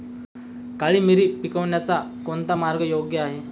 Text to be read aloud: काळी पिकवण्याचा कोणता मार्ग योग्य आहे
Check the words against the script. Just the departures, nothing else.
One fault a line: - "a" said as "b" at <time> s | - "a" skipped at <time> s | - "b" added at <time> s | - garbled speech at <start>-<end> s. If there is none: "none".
- "मिरी" added at 1.0 s